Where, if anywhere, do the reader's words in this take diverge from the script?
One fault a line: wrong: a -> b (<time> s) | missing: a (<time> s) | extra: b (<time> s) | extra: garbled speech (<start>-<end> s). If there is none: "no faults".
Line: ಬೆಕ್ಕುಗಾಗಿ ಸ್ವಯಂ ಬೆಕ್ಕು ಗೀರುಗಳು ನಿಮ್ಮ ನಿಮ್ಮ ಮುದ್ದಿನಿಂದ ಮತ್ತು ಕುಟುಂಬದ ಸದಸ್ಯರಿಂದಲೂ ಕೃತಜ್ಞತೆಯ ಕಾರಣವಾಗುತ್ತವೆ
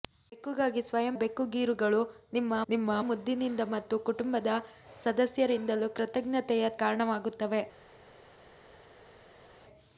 no faults